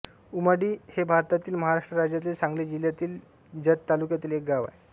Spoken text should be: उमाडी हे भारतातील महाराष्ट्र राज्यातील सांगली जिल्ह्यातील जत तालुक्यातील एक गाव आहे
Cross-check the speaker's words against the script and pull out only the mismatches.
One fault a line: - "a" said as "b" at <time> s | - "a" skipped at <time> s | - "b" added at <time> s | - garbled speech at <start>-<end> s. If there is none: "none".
none